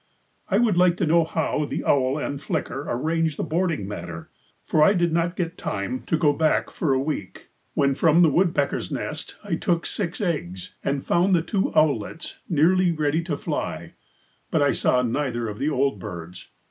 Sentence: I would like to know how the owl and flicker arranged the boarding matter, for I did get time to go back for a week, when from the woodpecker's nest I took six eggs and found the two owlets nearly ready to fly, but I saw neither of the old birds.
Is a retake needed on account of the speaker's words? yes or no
yes